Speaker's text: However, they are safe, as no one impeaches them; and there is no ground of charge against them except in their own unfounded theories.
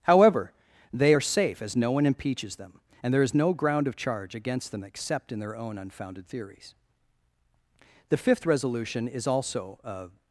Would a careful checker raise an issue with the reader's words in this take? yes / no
yes